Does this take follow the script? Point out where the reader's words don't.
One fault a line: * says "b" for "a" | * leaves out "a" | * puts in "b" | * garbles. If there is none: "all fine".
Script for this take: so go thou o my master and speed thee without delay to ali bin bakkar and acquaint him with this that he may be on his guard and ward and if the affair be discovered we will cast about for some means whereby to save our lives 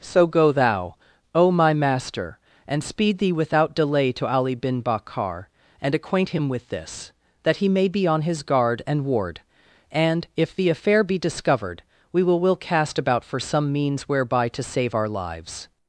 * puts in "will"